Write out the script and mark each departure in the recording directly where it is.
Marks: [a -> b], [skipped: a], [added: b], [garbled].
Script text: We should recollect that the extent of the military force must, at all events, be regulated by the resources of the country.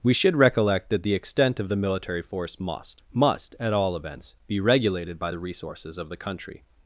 We should recollect that the extent of the military force must, [added: must] at all events, be regulated by the resources of the country.